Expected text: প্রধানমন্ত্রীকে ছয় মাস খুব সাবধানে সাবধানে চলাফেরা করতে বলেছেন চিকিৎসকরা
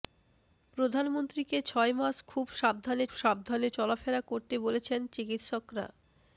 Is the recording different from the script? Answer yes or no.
no